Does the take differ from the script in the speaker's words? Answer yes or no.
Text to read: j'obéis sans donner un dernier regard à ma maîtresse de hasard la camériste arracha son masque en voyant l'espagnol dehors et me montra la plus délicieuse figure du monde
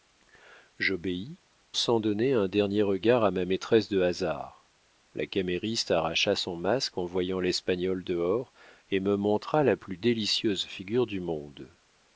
no